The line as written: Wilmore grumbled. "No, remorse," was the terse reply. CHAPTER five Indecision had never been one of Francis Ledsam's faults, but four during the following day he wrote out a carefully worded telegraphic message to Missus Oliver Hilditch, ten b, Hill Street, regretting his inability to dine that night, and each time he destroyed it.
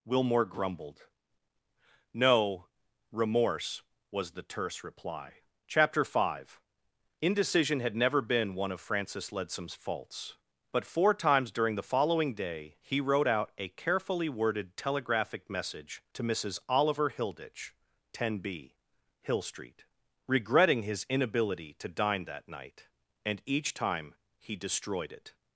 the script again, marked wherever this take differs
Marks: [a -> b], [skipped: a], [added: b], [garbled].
Wilmore grumbled. "No, remorse," was the terse reply. CHAPTER five Indecision had never been one of Francis Ledsam's faults, but four [added: times] during the following day he wrote out a carefully worded telegraphic message to Missus Oliver Hilditch, ten b, Hill Street, regretting his inability to dine that night, and each time he destroyed it.